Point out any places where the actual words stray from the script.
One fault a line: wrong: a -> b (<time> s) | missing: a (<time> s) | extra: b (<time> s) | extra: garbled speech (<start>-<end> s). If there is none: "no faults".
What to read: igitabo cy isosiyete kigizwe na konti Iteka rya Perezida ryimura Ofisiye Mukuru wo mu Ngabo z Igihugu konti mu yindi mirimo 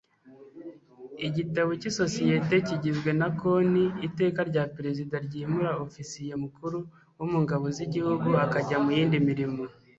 wrong: konti -> akajya (8.4 s)